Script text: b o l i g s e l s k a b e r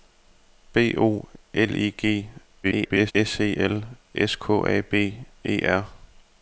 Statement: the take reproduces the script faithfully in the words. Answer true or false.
false